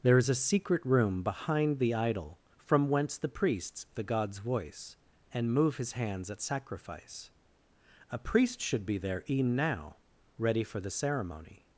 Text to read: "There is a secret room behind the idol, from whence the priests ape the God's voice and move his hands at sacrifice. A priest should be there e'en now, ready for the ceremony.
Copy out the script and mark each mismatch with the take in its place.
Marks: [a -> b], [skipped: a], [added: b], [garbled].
"There is a secret room behind the idol, from whence the priests [skipped: ape] the God's voice and move his hands at sacrifice. A priest should be there e'en now, ready for the ceremony.